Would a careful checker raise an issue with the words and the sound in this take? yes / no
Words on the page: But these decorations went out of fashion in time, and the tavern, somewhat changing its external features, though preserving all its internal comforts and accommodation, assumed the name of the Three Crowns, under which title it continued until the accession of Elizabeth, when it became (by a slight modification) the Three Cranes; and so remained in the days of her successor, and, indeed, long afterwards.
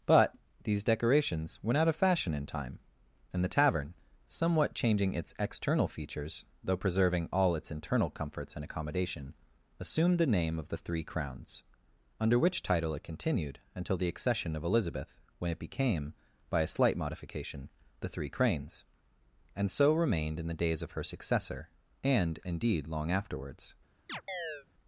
yes